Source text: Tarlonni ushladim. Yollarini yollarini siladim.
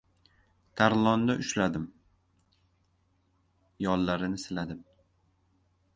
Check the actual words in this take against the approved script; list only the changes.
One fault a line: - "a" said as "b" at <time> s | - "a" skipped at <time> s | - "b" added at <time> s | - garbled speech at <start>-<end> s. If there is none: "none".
- "yollarini" skipped at 4.4 s